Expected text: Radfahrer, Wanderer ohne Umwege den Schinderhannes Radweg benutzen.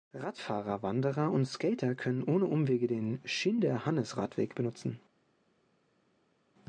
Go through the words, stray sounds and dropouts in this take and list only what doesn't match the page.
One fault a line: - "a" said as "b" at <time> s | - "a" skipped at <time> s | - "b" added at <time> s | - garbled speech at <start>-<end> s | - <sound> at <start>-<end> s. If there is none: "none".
- "und Skater können" added at 1.3 s